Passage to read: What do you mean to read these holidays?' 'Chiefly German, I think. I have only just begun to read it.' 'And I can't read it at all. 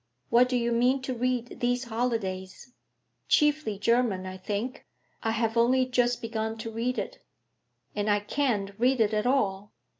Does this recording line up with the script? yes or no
yes